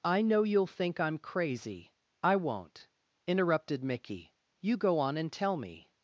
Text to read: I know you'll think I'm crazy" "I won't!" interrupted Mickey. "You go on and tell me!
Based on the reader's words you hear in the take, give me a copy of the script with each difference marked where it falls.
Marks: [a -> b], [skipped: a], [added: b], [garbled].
I know you'll think I'm crazy" "I won't!" interrupted Mickey. "You go on and tell me!